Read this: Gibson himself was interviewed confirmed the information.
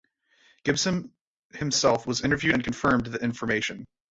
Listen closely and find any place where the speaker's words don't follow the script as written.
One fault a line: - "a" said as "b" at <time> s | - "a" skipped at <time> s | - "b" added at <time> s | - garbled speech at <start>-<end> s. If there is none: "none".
- "and" added at 2.5 s